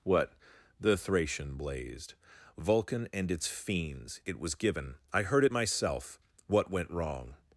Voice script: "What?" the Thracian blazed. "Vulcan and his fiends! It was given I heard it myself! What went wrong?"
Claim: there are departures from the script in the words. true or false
true